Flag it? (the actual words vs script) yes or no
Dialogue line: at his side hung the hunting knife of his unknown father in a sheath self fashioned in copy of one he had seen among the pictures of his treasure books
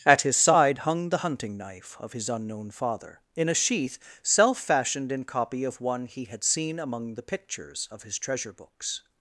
no